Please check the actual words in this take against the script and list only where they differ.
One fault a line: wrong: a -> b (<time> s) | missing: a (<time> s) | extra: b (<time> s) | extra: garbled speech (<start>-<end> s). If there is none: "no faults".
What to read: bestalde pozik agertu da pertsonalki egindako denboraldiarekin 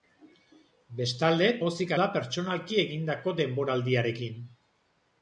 missing: agertu (1.9 s)